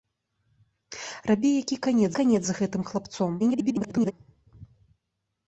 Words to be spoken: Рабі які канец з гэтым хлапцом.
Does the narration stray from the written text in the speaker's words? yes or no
yes